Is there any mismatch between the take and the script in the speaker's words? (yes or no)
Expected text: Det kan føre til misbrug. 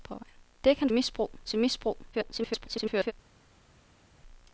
yes